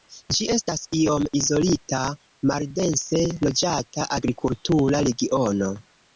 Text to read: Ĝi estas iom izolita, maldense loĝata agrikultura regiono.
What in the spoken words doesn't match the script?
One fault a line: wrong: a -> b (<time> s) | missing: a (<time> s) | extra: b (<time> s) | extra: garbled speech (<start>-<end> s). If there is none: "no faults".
no faults